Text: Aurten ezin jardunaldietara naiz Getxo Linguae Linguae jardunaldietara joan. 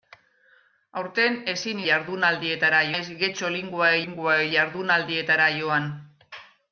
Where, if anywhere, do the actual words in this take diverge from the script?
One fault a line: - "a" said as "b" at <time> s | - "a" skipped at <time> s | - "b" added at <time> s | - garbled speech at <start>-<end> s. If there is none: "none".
none